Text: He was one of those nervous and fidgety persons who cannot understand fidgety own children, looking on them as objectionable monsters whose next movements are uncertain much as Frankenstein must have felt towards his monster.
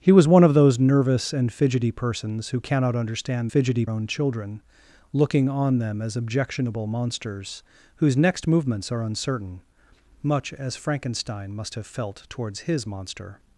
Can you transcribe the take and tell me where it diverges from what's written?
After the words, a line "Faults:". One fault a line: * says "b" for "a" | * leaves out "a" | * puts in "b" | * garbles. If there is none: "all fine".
He was one of those nervous and fidgety persons who cannot understand fidgety own children, looking on them as objectionable monsters whose next movements are uncertain much as Frankenstein must have felt towards his monster.
Faults:
all fine